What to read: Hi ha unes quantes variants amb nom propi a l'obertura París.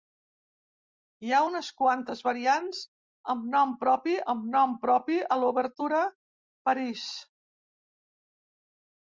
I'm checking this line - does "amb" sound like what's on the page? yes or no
yes